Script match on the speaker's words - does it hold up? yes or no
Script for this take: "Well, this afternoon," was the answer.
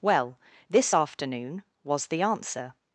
yes